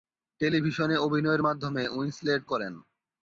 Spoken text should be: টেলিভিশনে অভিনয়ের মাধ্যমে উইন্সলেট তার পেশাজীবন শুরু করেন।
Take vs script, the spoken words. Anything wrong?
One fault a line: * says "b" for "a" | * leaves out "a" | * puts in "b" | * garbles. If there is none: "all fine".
* leaves out "তার পেশাজীবন শুরু"